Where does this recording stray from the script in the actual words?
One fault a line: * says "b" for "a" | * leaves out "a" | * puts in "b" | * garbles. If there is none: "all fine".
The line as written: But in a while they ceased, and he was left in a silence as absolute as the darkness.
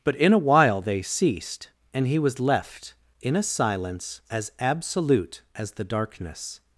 all fine